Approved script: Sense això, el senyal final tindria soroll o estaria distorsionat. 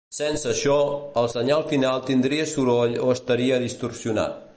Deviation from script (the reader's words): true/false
false